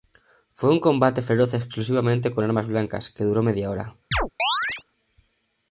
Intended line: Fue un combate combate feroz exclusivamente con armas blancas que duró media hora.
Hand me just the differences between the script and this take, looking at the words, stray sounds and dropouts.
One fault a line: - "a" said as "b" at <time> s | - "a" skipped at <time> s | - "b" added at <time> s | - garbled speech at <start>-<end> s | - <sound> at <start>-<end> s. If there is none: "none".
- "combate" skipped at 1.2 s
- chirp at 4.1-4.8 s